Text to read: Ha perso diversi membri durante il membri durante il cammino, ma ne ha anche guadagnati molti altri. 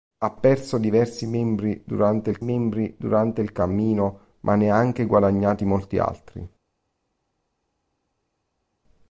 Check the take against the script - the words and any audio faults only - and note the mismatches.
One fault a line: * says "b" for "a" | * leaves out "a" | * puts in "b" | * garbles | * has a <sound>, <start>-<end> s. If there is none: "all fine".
all fine